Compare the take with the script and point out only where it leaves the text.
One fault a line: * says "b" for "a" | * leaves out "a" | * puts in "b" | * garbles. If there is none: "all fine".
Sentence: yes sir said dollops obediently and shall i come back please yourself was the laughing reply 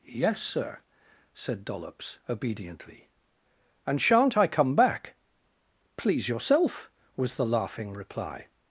* says "shan't" for "shall"